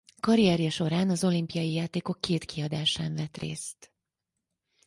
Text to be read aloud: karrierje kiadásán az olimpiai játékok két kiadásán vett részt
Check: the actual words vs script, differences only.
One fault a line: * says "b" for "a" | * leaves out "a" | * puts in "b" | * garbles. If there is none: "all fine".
* says "során" for "kiadásán"